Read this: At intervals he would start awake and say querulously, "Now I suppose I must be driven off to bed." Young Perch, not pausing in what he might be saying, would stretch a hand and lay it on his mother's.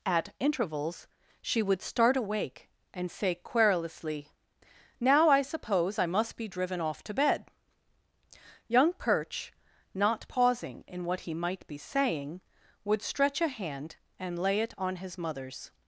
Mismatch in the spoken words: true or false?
true